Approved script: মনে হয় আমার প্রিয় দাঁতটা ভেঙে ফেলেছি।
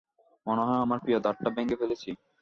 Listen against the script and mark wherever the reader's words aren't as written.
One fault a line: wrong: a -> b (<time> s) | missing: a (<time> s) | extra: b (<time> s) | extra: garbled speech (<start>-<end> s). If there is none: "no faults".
no faults